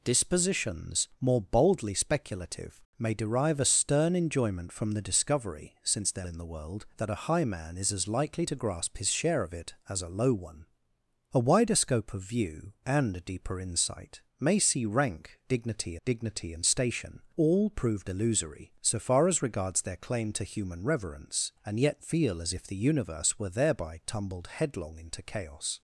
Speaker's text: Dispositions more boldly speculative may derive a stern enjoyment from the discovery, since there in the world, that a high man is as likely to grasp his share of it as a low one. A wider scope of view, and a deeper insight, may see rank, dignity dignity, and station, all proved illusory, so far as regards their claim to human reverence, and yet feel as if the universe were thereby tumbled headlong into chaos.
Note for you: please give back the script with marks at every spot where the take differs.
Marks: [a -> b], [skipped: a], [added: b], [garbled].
Dispositions more boldly speculative may derive a stern enjoyment from the discovery, since there in the world, that a high man is as likely to grasp his share of it as a low one. A wider scope of view, and a deeper insight, may see rank, dignity dignity, and station, all proved illusory, so far as regards their claim to human reverence, and yet feel as if the universe were thereby tumbled headlong into chaos.